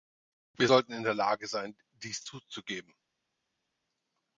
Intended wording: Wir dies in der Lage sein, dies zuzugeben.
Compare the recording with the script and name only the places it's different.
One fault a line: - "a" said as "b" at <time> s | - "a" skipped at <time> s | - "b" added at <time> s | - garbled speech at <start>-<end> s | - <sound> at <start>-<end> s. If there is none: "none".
- "dies" said as "sollten" at 0.6 s